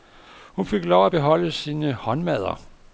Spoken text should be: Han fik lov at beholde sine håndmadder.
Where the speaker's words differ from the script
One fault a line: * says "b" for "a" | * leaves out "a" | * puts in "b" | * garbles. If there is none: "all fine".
* says "Hun" for "Han"